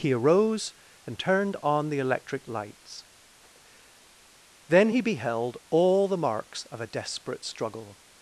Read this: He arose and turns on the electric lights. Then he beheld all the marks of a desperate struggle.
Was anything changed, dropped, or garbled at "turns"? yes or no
yes